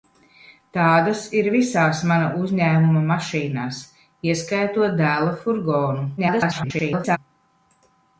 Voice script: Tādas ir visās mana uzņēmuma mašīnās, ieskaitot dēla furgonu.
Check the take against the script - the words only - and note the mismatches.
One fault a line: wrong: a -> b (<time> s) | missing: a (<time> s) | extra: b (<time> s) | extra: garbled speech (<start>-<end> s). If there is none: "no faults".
extra: garbled speech (6.2-7.2 s)